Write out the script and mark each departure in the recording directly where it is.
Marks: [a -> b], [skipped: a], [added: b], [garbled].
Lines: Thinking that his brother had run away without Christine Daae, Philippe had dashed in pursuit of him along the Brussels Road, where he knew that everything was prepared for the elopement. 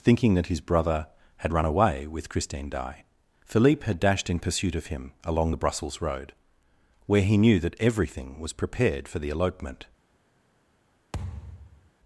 Thinking that his brother had run away [without -> with] Christine Daae, Philippe had dashed in pursuit of him along the Brussels Road, where he knew that everything was prepared for the elopement.